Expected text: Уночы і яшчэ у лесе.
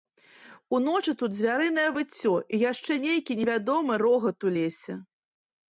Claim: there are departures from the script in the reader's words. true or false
true